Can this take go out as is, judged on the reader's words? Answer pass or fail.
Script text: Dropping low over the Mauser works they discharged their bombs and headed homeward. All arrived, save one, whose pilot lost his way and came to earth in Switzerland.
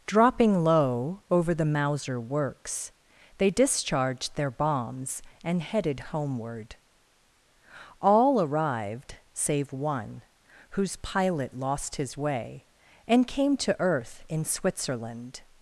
pass